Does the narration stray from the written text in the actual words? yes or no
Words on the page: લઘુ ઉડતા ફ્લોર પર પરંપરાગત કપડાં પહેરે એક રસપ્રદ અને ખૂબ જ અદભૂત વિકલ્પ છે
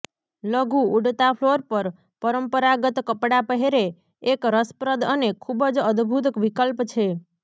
no